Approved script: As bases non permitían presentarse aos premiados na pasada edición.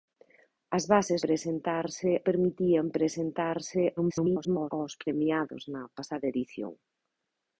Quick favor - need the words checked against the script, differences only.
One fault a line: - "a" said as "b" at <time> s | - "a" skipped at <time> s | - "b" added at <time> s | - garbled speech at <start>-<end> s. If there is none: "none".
- "non" said as "presentarse" at 1.3 s
- garbled speech at 4.0-4.7 s